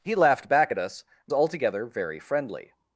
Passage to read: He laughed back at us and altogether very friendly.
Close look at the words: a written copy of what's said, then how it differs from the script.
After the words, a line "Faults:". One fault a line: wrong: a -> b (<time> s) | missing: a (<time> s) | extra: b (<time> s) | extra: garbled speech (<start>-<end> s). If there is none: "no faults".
He laughed back at us and altogether very friendly.
Faults:
no faults